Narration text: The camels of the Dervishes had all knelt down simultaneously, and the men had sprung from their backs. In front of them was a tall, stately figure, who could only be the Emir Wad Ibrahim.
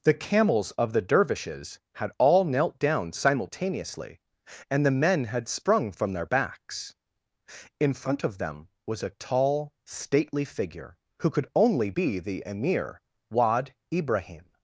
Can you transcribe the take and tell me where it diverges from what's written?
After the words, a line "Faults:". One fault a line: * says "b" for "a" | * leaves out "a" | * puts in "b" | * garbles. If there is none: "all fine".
The camels of the Dervishes had all knelt down simultaneously, and the men had sprung from their backs. In front of them was a tall, stately figure, who could only be the Emir Wad Ibrahim.
Faults:
all fine